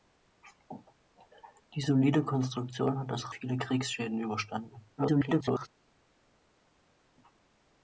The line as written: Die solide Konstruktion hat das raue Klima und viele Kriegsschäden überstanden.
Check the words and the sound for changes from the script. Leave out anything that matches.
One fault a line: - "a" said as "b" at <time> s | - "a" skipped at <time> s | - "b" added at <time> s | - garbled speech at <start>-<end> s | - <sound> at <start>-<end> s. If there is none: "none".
- "raue Klima und" skipped at 3.4 s
- garbled speech at 5.0-5.7 s